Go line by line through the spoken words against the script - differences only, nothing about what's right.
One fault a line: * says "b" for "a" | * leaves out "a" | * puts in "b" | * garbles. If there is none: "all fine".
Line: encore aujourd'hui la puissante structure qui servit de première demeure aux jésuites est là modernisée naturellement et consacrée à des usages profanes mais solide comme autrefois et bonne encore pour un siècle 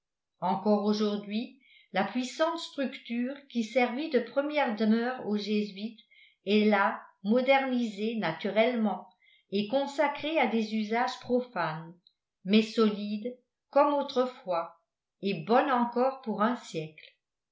all fine